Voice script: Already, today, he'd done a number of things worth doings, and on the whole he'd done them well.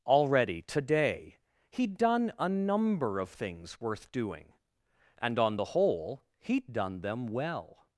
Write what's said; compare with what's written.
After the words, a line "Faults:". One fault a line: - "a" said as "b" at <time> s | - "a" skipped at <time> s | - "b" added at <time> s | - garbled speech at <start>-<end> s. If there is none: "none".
Already, today, he'd done a number of things worth doing, and on the whole he'd done them well.
Faults:
- "doings" said as "doing" at 4.1 s